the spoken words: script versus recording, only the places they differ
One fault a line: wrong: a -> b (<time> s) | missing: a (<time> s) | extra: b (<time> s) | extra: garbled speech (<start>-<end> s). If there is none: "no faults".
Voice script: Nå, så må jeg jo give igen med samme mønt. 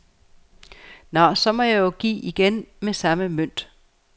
no faults